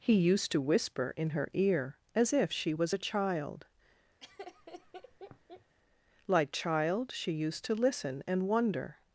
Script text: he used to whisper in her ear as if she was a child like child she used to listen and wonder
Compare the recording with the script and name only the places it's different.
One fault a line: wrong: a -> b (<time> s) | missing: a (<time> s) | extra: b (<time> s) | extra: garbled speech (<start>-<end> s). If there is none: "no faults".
no faults